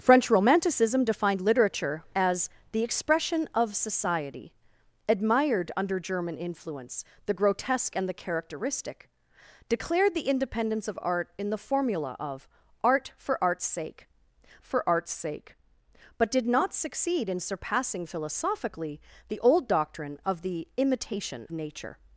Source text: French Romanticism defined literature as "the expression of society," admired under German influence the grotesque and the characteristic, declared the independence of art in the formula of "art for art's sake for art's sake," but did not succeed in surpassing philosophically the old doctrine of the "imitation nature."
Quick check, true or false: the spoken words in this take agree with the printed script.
true